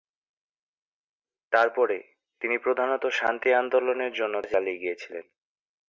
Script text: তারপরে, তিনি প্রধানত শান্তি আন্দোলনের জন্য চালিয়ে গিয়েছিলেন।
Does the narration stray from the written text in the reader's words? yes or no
no